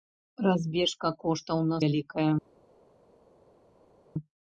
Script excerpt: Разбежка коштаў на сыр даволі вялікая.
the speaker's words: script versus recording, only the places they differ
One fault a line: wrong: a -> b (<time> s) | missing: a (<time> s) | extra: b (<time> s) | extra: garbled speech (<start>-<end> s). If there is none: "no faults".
missing: сыр даволі (1.8 s)